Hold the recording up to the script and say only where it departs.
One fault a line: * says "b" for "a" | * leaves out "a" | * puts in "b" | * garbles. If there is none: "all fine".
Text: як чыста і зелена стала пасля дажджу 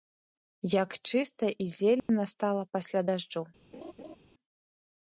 all fine